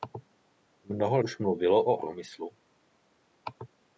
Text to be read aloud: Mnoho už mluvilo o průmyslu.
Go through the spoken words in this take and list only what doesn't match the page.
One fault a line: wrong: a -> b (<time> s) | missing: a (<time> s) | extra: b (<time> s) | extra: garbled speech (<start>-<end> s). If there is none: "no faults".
no faults